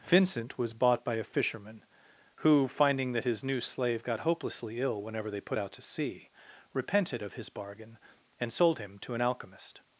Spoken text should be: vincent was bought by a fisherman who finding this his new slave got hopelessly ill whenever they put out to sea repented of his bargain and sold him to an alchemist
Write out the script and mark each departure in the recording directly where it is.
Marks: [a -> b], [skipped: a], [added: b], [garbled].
vincent was bought by a fisherman who finding [this -> that] his new slave got hopelessly ill whenever they put out to sea repented of his bargain and sold him to an alchemist